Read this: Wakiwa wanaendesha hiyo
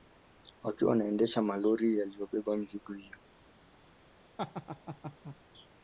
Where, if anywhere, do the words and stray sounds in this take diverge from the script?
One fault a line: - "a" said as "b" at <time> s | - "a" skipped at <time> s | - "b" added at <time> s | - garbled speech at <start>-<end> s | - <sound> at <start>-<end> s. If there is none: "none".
- "malori yaliyobeba mizigo" added at 1.4 s
- laugh at 4.4-5.4 s